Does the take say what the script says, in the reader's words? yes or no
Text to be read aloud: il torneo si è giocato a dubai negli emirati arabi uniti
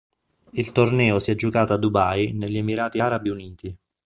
yes